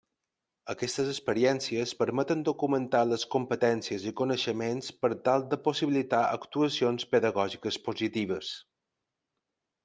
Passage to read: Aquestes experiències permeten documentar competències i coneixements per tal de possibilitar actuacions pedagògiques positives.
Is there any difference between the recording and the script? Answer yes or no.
yes